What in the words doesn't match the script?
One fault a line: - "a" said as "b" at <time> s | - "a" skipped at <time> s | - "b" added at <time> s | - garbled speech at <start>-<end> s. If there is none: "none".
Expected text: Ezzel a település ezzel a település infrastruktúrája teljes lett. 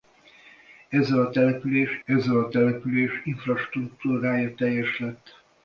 none